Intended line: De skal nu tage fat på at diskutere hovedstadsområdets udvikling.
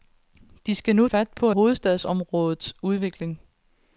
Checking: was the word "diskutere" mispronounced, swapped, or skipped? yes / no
yes